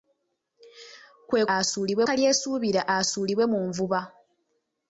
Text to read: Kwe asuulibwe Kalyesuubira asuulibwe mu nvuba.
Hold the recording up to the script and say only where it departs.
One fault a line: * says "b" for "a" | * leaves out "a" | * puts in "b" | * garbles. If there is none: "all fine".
all fine